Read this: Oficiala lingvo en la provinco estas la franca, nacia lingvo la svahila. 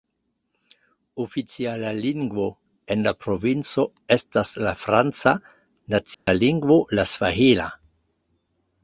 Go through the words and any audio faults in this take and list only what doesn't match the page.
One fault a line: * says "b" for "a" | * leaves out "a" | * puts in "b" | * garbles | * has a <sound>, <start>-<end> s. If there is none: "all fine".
* has a dropout, 6.1-6.3 s